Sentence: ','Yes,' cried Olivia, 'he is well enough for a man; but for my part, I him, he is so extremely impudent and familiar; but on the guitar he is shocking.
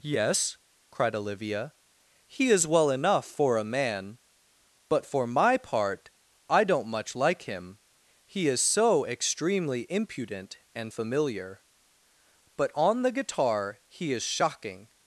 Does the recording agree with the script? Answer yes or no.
no